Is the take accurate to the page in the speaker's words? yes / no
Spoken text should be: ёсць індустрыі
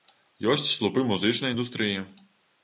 no